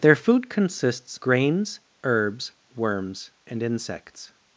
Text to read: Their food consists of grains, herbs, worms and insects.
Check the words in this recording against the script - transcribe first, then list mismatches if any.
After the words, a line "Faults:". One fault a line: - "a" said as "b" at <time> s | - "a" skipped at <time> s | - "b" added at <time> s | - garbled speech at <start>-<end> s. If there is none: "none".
Their food consists grains, herbs, worms and insects.
Faults:
- "of" skipped at 1.2 s